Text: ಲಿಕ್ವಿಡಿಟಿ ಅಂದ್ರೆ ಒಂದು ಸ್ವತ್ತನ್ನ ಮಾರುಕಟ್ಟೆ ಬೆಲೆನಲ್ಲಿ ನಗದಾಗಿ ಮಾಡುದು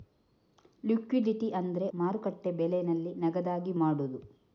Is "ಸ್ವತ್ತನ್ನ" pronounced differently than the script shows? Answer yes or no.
yes